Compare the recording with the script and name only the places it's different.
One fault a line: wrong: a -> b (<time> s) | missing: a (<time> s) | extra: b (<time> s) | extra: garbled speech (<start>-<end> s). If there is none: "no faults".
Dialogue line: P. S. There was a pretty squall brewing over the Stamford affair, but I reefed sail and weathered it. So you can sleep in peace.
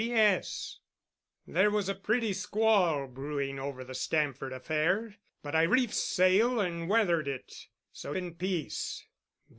missing: you can sleep (8.1 s)